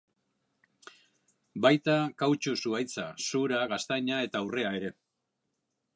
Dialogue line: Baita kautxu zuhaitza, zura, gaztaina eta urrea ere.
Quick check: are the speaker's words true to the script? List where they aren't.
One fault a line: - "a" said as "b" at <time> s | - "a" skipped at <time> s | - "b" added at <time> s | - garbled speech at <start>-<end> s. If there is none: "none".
none